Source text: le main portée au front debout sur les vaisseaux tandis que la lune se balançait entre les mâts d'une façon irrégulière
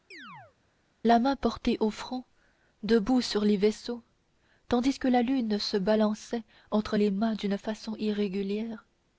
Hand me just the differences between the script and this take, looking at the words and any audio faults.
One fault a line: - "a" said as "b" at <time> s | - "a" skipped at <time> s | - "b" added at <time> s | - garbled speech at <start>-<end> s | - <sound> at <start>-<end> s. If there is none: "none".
- chirp at 0.1-0.6 s
- "le" said as "la" at 1.1 s